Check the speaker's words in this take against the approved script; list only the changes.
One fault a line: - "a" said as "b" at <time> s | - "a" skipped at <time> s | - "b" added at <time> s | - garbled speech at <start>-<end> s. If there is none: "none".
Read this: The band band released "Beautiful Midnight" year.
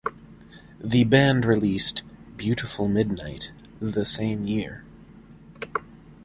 - "band" skipped at 1.4 s
- "the same" added at 3.8 s